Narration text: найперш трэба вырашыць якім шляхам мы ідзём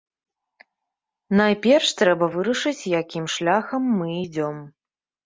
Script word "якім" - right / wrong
right